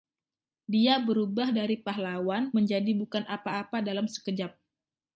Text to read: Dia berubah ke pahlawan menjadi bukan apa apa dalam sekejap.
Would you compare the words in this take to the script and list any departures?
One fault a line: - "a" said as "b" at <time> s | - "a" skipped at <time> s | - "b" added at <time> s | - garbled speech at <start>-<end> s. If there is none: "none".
- "ke" said as "dari" at 1.5 s